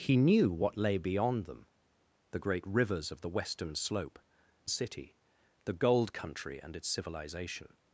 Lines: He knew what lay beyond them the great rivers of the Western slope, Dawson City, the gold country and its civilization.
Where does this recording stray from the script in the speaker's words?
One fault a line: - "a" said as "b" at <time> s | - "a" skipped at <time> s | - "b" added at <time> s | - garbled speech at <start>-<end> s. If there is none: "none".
- "Dawson" skipped at 4.2 s